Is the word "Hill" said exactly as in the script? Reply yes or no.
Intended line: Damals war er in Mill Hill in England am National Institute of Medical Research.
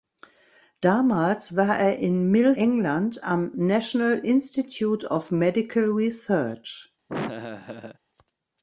no